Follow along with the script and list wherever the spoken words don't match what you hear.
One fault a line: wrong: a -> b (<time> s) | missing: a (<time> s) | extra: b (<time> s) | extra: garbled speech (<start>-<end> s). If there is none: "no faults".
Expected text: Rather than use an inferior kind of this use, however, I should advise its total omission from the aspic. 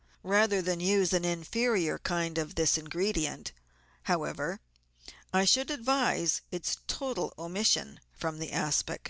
wrong: use -> ingredient (2.8 s)